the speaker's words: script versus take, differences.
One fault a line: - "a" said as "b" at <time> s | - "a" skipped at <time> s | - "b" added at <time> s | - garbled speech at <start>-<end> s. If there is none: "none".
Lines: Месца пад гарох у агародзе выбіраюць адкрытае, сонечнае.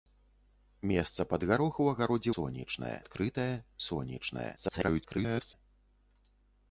- "выбіраюць" said as "сонечнае" at 2.4 s
- garbled speech at 4.6-5.5 s